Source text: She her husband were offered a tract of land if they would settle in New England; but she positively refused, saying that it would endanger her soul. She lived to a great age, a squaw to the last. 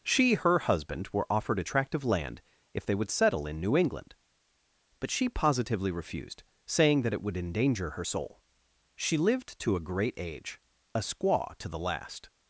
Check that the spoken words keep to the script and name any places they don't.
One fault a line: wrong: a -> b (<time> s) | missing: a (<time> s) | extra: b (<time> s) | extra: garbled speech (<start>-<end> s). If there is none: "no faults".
no faults